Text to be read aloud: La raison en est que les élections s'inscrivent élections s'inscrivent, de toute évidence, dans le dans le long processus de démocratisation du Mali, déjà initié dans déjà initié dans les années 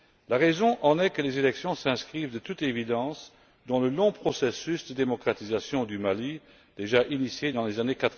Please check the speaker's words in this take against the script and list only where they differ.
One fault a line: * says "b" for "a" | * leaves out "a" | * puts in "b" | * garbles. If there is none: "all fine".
* leaves out "élections s'inscrivent"
* leaves out "dans le"
* leaves out "déjà initié dans"